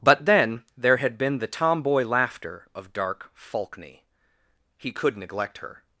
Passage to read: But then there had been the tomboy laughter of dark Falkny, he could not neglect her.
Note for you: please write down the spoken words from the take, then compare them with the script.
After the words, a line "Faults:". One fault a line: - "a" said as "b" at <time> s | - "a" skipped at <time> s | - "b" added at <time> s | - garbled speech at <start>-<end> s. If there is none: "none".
But then there had been the tomboy laughter of dark Falkny, he could neglect her.
Faults:
- "not" skipped at 5.2 s